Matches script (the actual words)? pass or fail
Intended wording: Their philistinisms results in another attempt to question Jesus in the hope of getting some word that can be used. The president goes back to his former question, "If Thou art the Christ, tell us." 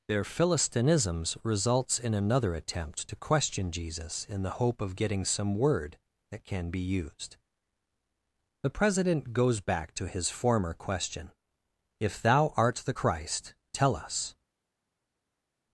pass